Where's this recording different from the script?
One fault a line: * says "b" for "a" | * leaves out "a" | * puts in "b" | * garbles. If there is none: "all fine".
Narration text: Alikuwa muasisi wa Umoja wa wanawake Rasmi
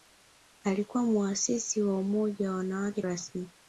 all fine